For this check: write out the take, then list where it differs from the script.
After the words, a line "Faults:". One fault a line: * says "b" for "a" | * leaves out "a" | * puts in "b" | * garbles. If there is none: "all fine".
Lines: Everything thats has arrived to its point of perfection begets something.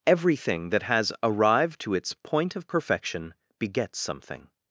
Everything that has arrived to its point of perfection begets something.
Faults:
* says "that" for "thats"